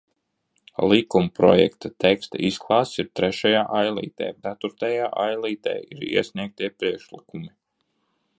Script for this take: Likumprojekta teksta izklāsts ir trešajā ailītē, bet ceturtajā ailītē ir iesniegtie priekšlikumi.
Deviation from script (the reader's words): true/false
true